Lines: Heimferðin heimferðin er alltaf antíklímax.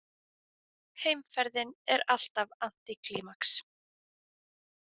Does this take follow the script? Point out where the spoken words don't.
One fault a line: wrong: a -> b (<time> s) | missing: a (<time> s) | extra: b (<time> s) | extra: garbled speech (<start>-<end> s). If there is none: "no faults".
missing: heimferðin (1.8 s)